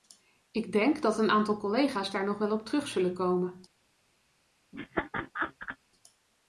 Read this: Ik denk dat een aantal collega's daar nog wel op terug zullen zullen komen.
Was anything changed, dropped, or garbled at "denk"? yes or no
no